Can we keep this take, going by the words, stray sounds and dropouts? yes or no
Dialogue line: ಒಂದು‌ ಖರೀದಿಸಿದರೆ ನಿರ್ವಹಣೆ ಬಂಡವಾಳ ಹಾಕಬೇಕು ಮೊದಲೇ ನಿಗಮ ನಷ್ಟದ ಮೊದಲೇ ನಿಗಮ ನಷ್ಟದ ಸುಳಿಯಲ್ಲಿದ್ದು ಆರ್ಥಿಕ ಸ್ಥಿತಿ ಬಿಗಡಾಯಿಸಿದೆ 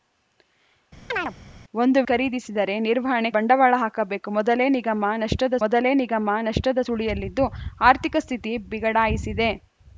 no